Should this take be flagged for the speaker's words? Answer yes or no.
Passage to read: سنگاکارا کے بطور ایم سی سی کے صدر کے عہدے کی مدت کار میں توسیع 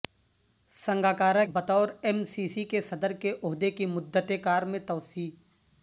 yes